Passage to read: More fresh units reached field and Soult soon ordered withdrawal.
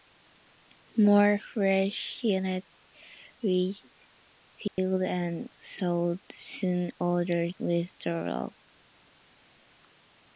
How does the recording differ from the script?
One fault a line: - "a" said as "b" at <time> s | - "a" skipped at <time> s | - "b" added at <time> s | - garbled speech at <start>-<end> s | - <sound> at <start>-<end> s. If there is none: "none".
- dropout at 4.7-4.8 s